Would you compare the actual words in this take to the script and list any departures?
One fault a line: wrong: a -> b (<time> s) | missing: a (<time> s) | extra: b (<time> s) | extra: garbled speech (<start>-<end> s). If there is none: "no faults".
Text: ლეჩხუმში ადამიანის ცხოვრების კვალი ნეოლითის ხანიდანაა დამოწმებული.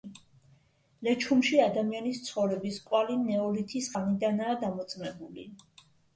no faults